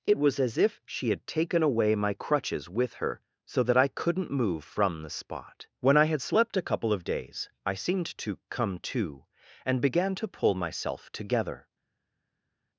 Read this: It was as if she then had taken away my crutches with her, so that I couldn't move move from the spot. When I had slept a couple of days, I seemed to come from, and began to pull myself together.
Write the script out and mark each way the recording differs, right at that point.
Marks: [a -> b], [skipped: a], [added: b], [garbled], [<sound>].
It was as if she [skipped: then] had taken away my crutches with her, so that I couldn't move [skipped: move] from the spot. When I had slept a couple of days, I seemed to come [from, -> to] and began to pull myself together.